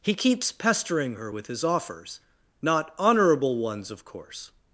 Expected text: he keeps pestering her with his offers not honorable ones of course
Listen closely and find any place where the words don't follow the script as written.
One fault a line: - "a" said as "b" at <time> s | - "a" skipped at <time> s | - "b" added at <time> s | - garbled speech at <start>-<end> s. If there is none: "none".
none